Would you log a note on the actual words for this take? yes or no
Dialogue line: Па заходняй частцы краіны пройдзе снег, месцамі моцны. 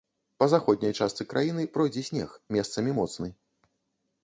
no